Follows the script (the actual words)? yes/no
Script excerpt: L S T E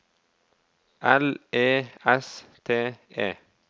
no